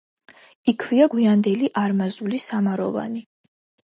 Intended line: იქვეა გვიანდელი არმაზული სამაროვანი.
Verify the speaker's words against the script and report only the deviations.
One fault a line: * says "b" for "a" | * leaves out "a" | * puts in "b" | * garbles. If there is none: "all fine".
all fine